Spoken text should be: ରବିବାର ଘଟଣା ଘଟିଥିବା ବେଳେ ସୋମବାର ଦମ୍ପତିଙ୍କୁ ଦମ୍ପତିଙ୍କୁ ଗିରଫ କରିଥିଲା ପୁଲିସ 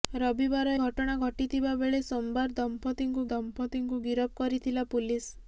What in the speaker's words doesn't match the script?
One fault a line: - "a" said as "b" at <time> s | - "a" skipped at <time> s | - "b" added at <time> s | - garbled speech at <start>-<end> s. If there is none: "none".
none